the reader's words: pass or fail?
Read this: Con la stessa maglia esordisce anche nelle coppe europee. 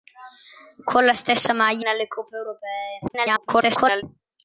fail